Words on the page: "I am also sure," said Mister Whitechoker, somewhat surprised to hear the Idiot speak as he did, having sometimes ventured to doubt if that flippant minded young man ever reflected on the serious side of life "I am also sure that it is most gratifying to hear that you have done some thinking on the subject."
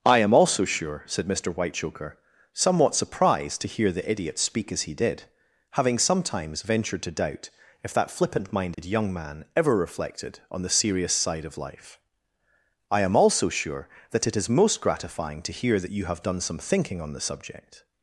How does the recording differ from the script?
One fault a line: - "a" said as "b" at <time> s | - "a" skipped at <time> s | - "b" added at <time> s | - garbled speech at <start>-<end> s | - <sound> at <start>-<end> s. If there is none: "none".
- dropout at 8.7-8.8 s